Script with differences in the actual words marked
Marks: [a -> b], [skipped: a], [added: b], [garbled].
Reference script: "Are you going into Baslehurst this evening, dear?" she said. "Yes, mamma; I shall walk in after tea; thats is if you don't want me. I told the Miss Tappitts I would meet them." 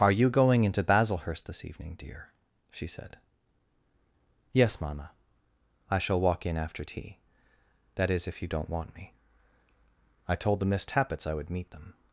"Are you going into Baslehurst this evening, dear?" she said. "Yes, mamma; I shall walk in after tea; [thats -> that] is if you don't want me. I told the Miss Tappitts I would meet them."